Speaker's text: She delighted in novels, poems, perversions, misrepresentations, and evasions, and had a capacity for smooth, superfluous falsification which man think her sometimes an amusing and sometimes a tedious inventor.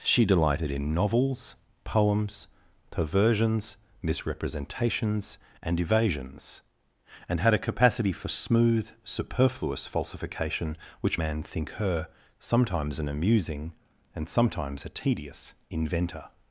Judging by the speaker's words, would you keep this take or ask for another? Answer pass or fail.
pass